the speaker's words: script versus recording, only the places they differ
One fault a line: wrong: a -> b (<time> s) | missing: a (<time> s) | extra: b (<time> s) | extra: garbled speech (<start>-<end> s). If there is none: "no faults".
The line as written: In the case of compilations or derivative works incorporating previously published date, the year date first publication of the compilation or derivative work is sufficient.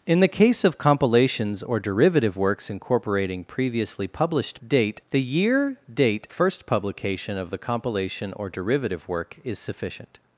no faults